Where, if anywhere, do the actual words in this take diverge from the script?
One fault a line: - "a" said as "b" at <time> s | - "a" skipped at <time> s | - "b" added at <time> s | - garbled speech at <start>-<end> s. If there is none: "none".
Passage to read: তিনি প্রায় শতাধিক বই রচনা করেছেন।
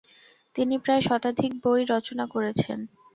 none